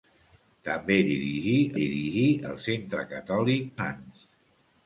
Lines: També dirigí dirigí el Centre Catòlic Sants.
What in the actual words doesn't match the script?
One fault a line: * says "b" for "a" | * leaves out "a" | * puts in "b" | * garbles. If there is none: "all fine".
all fine